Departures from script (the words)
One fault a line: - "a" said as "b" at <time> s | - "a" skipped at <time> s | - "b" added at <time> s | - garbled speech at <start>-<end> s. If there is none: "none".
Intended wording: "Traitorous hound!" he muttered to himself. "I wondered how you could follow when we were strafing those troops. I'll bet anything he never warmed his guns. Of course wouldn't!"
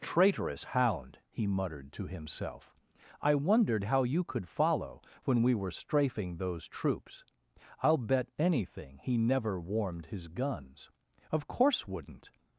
none